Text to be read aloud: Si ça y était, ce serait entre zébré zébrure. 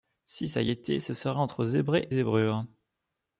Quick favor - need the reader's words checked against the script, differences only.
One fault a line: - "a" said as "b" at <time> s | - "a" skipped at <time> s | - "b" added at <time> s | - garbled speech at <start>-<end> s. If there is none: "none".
none